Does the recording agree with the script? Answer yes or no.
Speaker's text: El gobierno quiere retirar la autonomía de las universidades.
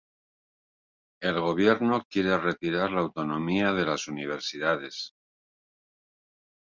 yes